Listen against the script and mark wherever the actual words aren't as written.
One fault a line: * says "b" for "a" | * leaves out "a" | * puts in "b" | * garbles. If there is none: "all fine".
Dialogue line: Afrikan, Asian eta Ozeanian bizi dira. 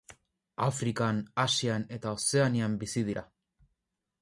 all fine